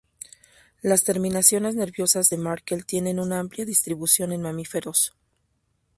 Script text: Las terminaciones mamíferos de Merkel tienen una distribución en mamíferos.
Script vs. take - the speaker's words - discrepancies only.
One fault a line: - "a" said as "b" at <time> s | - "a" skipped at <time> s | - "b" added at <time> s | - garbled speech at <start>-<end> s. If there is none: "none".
- "mamíferos" said as "nerviosas" at 1.8 s
- "amplia" added at 3.4 s